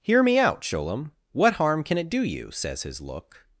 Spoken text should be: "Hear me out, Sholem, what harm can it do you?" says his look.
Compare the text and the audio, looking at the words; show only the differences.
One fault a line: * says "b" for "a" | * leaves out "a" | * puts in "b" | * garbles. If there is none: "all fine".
all fine